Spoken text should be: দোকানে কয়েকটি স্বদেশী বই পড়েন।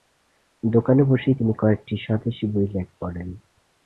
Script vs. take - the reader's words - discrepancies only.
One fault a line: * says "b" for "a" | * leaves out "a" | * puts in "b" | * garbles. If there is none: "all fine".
* puts in "বসেই তিনি"